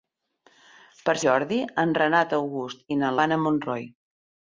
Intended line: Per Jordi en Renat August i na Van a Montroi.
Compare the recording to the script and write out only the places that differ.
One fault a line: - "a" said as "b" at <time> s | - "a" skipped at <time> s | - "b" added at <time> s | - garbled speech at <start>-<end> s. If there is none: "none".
none